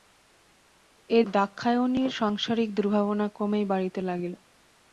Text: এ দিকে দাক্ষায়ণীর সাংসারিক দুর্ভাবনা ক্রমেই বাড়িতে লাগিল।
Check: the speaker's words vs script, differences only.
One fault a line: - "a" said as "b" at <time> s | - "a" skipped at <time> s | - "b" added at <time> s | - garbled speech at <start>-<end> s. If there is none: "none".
- "দিকে" skipped at 1.2 s